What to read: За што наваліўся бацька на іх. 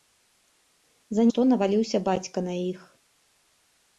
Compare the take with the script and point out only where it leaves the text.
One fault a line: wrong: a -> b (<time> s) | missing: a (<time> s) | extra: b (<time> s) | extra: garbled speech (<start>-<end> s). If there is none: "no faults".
no faults